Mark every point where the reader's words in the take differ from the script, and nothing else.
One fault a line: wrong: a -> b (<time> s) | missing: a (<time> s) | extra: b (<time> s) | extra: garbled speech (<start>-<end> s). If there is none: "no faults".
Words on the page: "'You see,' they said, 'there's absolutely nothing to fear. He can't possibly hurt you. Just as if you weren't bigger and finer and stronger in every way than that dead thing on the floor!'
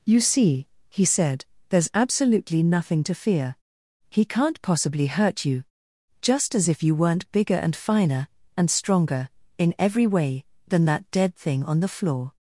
wrong: they -> he (0.9 s)